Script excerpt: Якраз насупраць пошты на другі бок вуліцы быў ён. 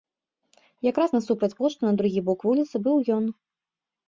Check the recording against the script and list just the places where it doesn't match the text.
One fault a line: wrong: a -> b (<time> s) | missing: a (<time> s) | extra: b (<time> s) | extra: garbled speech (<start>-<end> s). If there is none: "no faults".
no faults